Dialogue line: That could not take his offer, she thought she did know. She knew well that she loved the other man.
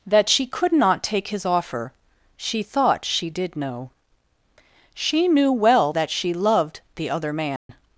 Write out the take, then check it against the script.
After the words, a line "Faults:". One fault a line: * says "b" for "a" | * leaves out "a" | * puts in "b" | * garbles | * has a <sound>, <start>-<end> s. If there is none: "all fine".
That she could not take his offer, she thought she did know. She knew well that she loved the other man.
Faults:
* puts in "she"
* has a dropout, 7.6-7.7 s